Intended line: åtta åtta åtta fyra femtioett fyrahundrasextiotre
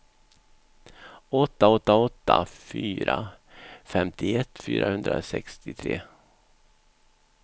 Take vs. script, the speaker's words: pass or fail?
pass